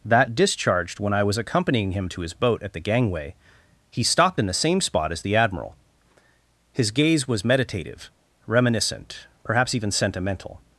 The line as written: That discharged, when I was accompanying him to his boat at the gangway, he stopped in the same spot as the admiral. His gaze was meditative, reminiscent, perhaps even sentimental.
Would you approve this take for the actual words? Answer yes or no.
yes